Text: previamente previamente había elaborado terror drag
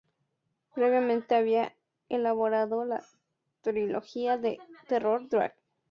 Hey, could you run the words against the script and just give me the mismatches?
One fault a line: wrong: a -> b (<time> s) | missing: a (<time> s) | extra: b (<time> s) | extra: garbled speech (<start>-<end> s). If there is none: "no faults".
missing: previamente (1.4 s)
extra: la trilogía de (2.9 s)